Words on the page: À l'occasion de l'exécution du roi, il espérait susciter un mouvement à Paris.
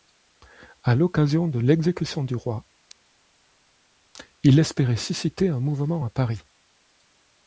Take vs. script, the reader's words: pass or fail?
pass